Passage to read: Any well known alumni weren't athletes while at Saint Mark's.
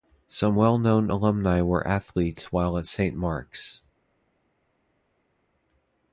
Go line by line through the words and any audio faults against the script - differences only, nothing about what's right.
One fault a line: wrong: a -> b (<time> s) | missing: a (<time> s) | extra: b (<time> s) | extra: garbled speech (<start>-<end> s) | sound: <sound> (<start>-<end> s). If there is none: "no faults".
wrong: Any -> Some (0.2 s)
wrong: weren't -> were (1.6 s)